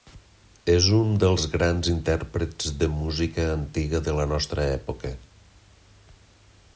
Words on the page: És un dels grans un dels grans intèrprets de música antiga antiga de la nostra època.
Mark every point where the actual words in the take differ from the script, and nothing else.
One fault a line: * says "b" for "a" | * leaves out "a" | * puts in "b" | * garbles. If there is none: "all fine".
* leaves out "un dels grans"
* leaves out "antiga"